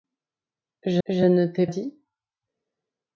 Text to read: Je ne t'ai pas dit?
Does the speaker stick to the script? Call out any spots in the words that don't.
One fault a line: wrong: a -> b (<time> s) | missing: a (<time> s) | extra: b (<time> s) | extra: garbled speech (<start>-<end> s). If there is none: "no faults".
extra: je (1.1 s)
missing: pas (1.7 s)